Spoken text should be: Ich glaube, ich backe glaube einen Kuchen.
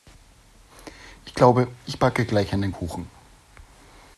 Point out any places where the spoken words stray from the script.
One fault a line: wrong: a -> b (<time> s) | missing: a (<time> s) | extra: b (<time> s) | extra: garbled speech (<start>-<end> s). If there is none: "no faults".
wrong: glaube -> gleich (2.3 s)